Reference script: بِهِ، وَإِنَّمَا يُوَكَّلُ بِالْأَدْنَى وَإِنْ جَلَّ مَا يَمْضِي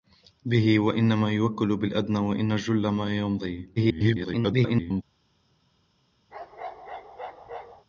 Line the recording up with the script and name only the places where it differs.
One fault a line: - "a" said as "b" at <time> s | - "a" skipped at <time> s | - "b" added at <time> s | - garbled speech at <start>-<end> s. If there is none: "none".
- garbled speech at 3.8-5.0 s